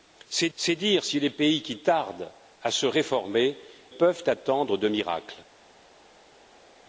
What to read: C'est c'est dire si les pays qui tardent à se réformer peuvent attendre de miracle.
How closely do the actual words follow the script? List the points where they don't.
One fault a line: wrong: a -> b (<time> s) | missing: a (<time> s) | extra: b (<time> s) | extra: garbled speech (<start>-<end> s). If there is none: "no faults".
no faults